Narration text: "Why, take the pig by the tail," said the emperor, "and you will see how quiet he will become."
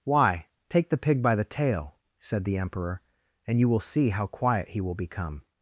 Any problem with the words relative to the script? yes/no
no